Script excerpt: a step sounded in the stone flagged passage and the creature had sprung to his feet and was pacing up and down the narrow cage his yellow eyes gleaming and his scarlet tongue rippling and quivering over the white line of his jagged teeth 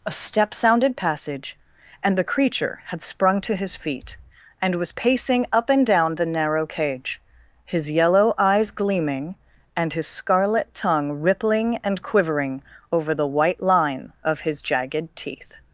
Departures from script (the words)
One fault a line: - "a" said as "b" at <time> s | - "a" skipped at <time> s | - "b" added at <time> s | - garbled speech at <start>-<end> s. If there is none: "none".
- "in the stone flagged" skipped at 1.0 s